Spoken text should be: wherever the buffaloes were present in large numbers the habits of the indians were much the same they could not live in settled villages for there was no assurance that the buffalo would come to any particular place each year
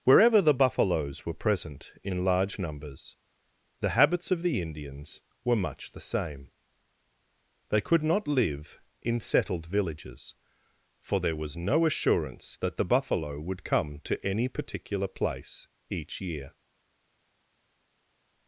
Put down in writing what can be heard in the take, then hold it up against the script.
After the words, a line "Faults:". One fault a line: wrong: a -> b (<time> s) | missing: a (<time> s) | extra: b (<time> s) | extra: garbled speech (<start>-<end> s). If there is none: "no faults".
wherever the buffaloes were present in large numbers the habits of the indians were much the same they could not live in settled villages for there was no assurance that the buffalo would come to any particular place each year
Faults:
no faults